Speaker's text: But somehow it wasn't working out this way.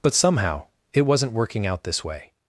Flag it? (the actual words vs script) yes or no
no